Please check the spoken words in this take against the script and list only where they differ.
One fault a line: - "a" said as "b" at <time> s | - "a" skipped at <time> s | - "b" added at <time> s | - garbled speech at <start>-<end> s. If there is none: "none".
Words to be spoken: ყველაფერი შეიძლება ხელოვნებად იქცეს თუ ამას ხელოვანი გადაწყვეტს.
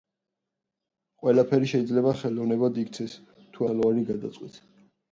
- "ამას" skipped at 3.7 s